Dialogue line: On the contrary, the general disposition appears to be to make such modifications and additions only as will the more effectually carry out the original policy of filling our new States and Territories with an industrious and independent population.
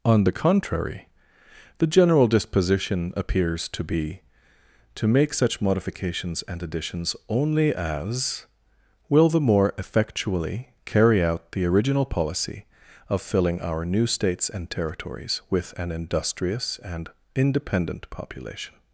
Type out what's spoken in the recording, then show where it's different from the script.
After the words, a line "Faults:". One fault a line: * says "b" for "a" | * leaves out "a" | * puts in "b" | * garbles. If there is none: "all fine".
On the contrary, the general disposition appears to be to make such modifications and additions only as will the more effectually carry out the original policy of filling our new States and Territories with an industrious and independent population.
Faults:
all fine